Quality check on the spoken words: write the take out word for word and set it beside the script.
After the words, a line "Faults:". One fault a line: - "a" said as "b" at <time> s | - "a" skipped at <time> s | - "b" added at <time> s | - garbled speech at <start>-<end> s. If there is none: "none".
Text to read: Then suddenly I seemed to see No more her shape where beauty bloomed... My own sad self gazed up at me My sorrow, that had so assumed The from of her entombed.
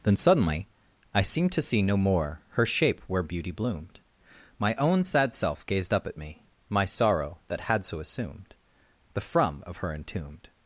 Then suddenly I seemed to see No more her shape where beauty bloomed... My own sad self gazed up at me My sorrow, that had so assumed The from of her entombed.
Faults:
none